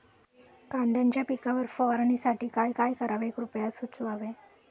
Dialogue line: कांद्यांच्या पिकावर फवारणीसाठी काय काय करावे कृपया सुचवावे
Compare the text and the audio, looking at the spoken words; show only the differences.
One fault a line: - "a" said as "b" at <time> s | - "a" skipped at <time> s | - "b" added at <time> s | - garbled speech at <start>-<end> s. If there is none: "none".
none